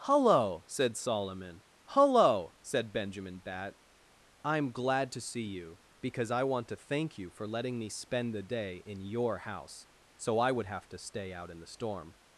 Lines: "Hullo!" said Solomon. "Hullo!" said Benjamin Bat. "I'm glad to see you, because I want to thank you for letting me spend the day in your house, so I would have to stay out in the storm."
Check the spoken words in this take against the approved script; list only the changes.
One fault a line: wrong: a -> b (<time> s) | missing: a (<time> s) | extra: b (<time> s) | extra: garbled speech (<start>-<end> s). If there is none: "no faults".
no faults